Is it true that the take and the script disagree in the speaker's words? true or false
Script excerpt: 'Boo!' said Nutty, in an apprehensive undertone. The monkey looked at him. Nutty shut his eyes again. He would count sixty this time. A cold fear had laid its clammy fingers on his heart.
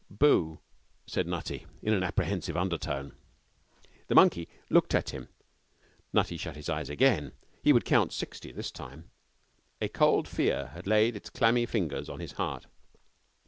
false